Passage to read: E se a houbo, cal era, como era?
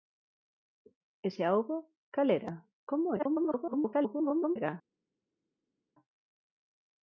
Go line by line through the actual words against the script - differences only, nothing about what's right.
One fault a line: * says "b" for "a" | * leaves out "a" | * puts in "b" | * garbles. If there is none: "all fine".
* garbles